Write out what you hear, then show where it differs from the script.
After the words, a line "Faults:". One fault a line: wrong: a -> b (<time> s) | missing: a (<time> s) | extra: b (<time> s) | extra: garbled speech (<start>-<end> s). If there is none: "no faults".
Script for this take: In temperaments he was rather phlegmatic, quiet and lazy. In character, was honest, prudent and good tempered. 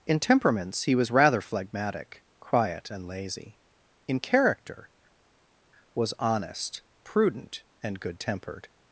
In temperaments he was rather phlegmatic, quiet and lazy. In character, was honest, prudent and good tempered.
Faults:
no faults